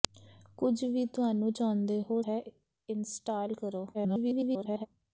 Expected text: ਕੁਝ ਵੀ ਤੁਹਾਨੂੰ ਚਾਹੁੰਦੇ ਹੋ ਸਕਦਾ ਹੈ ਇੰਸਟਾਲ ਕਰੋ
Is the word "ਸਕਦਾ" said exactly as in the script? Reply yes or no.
no